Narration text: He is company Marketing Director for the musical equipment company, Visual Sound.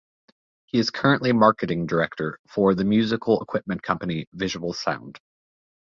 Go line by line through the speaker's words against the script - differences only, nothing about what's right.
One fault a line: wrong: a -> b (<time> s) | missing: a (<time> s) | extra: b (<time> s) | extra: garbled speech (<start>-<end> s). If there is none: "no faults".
wrong: company -> currently (0.9 s)